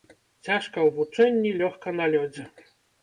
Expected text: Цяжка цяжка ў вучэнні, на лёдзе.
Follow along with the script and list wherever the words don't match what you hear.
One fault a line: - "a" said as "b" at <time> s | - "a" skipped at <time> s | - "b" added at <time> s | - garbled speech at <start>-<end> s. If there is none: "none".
- "цяжка" skipped at 0.8 s
- "лёгка" added at 1.6 s